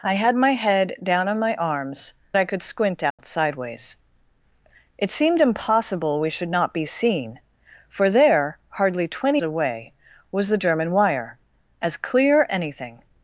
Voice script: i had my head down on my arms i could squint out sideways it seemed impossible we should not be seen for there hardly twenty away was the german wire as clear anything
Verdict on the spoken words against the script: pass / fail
pass